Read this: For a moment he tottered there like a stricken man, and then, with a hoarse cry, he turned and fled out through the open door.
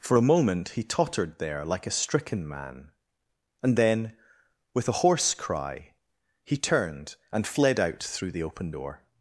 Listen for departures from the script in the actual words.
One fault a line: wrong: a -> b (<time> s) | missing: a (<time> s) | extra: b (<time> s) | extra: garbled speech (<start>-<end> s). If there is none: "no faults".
no faults